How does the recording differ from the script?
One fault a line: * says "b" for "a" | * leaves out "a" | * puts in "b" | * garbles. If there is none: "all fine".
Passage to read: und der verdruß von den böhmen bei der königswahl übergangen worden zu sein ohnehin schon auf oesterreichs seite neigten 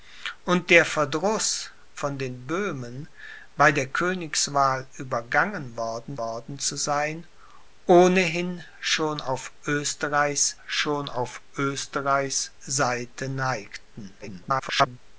* puts in "worden"
* puts in "schon auf oesterreichs"
* garbles